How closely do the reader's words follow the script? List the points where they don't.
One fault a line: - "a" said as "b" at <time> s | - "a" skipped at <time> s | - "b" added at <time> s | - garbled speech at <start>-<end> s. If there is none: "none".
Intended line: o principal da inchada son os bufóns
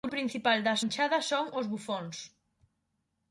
none